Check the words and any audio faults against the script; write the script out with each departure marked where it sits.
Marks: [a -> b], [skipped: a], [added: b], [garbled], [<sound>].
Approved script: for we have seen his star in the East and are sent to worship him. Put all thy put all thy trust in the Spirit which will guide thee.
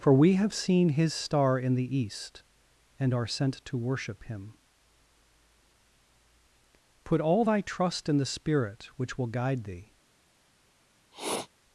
for we have seen his star in the East and are sent to worship him. Put all thy [skipped: put all thy] trust in the Spirit which will guide thee. [sniff]